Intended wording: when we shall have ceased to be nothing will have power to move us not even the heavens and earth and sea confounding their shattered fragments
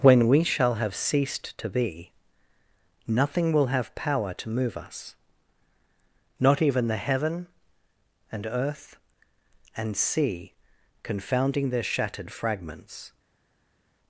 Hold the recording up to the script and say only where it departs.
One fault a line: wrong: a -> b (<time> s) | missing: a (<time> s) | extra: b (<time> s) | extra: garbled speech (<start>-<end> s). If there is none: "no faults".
wrong: heavens -> heaven (7.0 s)